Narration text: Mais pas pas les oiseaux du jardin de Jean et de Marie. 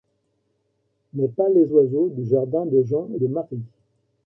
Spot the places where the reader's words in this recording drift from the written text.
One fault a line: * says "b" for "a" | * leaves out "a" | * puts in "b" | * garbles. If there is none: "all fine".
* leaves out "pas"